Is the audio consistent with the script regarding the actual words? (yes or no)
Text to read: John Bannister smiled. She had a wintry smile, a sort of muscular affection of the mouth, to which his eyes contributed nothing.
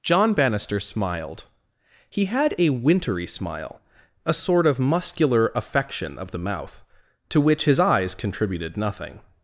no